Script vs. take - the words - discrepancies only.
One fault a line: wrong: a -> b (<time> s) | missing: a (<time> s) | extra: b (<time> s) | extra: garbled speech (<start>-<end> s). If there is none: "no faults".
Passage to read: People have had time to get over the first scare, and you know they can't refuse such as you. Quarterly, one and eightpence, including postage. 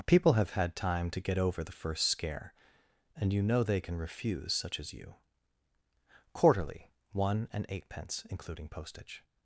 wrong: can't -> can (3.8 s)